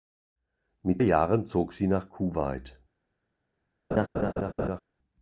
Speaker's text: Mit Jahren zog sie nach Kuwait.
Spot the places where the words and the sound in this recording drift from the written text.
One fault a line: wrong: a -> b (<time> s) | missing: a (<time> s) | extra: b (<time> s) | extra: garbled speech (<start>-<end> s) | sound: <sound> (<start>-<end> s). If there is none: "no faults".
sound: laugh (3.9-4.8 s)